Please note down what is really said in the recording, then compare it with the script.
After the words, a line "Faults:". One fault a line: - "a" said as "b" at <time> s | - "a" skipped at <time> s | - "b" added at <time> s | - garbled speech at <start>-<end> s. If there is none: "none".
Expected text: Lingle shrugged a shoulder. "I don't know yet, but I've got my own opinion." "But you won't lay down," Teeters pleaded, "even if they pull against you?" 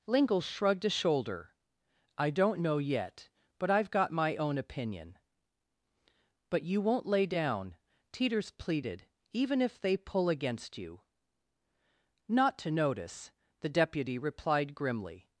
Lingle shrugged a shoulder. "I don't know yet, but I've got my own opinion." "But you won't lay down," Teeters pleaded, "even if they pull against you?" "Not to notice!" the deputy replied grimly
Faults:
- "Not to notice the deputy replied grimly" added at 12.3 s